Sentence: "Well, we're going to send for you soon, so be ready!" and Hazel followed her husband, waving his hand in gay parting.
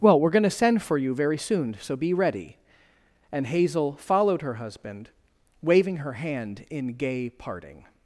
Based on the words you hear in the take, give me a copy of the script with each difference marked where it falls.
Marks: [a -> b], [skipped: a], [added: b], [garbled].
"Well, we're going to send for you [added: very] soon, so be ready!" and Hazel followed her husband, waving [his -> her] hand in gay parting.